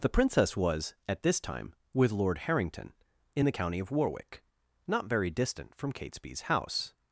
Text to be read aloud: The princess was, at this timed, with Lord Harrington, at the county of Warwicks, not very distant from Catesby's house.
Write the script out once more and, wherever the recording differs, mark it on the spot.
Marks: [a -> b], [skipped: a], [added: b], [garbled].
The princess was, at this [timed, -> time] with Lord Harrington, [at -> in] the county of [Warwicks, -> Warwick] not very distant from Catesby's house.